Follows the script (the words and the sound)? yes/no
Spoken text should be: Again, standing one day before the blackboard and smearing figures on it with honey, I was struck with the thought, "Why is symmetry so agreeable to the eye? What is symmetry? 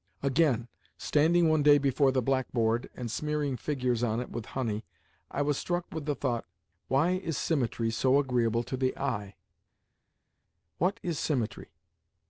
yes